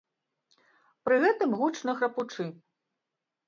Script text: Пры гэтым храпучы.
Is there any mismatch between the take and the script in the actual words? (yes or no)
yes